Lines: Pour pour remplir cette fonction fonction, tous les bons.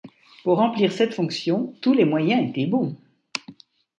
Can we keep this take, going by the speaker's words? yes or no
no